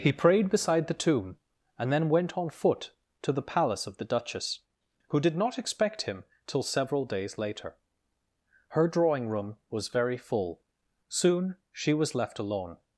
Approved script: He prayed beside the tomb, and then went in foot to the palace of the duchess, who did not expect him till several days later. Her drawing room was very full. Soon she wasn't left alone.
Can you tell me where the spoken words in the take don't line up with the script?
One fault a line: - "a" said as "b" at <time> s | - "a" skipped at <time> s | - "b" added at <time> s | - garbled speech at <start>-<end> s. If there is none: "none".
- "in" said as "on" at 2.4 s
- "wasn't" said as "was" at 11.9 s